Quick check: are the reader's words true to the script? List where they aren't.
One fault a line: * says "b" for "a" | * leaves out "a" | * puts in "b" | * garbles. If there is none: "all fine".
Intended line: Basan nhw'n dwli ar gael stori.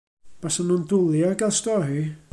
all fine